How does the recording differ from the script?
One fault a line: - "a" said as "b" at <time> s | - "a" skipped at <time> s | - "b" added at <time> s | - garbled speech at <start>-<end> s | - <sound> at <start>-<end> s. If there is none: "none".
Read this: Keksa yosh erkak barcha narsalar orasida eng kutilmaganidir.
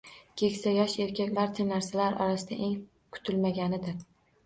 none